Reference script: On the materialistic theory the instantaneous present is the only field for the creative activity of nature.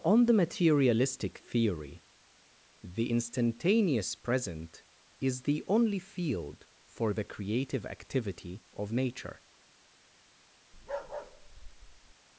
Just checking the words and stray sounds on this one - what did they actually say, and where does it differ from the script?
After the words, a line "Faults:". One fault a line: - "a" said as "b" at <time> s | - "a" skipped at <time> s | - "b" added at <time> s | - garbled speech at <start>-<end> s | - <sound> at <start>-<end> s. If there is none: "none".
On the materialistic theory the instantaneous present is the only field for the creative activity of nature.
Faults:
- bark at 10.7-12.1 s